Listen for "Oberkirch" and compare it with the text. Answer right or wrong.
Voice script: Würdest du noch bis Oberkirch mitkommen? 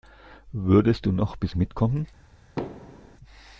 wrong